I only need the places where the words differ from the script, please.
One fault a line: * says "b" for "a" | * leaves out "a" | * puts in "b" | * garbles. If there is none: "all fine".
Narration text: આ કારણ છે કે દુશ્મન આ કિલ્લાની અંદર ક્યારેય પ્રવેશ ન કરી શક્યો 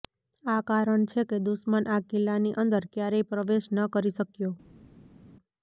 all fine